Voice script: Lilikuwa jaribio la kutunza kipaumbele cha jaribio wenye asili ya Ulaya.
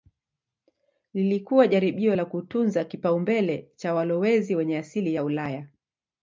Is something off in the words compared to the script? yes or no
yes